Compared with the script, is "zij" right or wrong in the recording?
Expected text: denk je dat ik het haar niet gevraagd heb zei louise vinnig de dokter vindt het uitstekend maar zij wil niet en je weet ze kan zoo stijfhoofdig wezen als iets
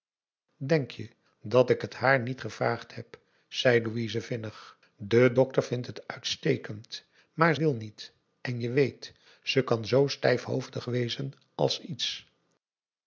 wrong